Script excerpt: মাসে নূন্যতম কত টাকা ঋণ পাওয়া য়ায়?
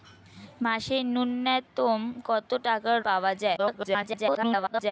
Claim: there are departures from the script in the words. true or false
true